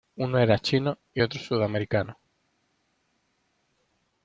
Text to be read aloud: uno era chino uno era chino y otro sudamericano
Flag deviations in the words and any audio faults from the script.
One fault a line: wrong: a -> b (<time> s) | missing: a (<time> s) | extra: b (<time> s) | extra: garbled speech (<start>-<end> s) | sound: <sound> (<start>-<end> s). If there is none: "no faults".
missing: uno era chino (1.0 s)